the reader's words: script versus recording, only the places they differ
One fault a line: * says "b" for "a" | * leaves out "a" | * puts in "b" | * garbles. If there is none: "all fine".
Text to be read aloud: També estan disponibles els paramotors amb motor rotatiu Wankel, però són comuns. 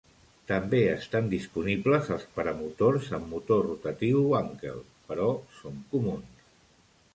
all fine